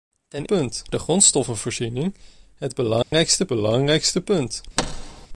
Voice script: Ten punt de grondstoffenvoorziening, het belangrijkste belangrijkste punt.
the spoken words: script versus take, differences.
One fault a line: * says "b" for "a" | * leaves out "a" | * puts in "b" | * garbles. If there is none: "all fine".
all fine